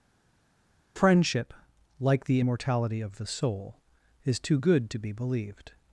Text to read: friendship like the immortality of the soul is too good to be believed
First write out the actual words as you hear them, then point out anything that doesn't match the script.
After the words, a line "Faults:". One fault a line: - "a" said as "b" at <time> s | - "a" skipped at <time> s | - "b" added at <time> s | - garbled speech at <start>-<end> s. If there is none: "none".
friendship like the immortality of the soul is too good to be believed
Faults:
none